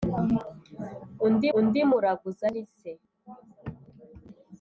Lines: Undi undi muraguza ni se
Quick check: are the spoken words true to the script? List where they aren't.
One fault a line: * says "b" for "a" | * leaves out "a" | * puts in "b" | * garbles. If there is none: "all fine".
all fine